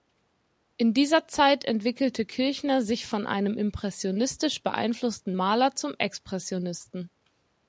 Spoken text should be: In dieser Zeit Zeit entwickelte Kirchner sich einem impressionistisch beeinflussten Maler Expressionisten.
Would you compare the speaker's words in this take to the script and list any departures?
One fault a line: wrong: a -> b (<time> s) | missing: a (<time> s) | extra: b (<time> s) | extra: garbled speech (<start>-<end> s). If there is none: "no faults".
missing: Zeit (1.6 s)
extra: von (3.1 s)
extra: zum (5.7 s)